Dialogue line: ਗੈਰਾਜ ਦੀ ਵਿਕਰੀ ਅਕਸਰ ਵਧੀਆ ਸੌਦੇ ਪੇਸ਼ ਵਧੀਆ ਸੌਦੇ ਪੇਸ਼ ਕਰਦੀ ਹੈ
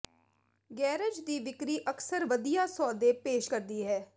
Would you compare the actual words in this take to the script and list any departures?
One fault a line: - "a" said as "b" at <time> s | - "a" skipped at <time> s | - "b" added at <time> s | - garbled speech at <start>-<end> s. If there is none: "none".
- "ਵਧੀਆ ਸੌਦੇ ਪੇਸ਼" skipped at 3.5 s